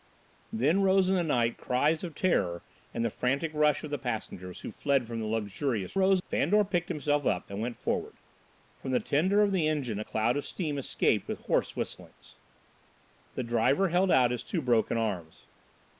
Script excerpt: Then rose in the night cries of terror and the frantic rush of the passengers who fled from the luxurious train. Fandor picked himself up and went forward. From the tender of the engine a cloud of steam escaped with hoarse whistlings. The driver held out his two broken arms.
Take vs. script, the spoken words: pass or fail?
fail